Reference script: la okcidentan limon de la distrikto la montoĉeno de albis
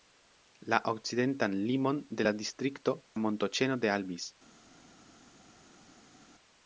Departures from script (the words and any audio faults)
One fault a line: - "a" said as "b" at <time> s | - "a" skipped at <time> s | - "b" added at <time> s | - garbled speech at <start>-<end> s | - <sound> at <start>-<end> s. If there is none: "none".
none